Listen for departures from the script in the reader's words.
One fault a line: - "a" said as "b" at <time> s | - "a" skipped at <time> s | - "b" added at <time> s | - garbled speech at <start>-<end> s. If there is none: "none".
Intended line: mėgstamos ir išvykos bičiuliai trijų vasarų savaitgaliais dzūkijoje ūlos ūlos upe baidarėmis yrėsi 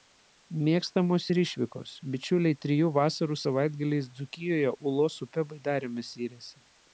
- "ūlos" skipped at 5.2 s